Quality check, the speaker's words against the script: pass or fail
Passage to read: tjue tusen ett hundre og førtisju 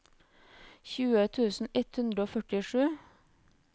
pass